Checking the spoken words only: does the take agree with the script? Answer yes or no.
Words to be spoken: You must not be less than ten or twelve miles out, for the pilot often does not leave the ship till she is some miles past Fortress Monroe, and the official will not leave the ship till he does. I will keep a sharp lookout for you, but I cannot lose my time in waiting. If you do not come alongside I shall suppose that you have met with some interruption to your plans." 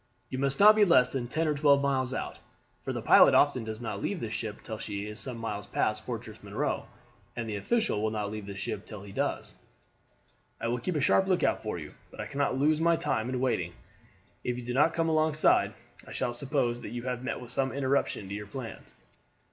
yes